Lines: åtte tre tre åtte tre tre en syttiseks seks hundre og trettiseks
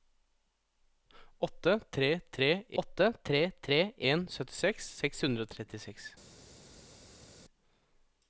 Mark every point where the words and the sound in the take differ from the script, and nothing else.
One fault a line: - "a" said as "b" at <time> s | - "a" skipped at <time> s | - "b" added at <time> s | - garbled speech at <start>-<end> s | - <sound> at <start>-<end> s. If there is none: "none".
none